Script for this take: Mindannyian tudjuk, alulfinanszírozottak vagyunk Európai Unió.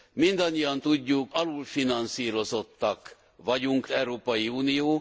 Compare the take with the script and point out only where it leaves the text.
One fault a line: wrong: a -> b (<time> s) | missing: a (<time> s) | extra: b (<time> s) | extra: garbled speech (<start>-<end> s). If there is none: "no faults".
no faults